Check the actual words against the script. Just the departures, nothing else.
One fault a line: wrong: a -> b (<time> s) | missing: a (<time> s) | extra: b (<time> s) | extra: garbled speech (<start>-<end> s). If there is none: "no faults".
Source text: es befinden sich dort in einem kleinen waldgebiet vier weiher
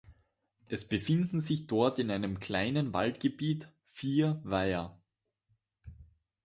no faults